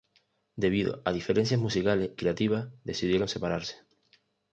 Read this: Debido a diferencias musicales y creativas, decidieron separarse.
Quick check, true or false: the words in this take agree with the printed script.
false